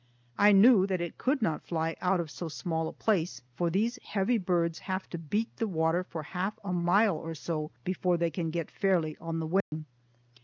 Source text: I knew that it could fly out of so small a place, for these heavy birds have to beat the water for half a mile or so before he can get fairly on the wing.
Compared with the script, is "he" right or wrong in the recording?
wrong